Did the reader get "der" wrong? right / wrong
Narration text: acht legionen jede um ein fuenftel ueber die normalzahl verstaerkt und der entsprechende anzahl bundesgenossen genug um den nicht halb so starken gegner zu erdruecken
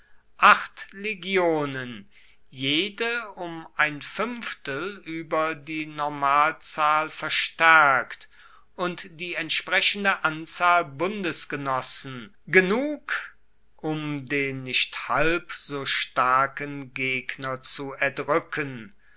wrong